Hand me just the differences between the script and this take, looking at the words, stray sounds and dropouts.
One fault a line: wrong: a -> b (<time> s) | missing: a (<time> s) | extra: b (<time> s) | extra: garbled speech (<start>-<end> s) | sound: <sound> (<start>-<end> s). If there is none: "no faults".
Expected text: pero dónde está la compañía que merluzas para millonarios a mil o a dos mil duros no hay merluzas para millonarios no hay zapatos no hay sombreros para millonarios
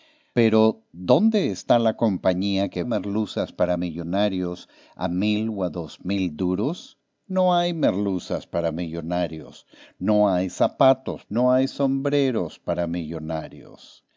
no faults